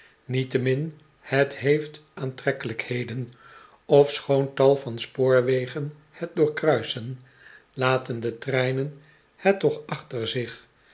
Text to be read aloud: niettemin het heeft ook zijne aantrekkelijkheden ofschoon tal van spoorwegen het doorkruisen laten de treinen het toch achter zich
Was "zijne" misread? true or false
true